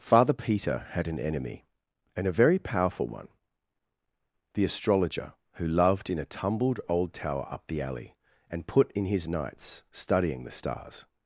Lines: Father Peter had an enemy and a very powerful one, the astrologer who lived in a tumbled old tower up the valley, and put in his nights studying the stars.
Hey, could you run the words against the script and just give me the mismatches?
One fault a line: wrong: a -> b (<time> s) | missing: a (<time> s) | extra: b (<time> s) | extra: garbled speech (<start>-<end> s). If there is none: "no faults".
wrong: lived -> loved (5.7 s)
wrong: valley -> alley (7.8 s)